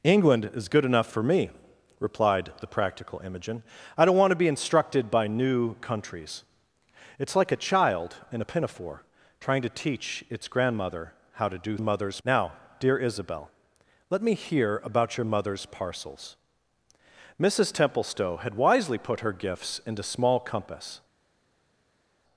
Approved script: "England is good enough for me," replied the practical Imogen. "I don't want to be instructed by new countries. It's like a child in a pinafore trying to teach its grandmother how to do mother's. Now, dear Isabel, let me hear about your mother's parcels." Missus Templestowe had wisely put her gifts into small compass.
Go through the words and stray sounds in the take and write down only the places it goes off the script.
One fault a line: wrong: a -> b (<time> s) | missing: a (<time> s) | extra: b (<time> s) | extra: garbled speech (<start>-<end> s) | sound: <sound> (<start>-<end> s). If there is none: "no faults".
no faults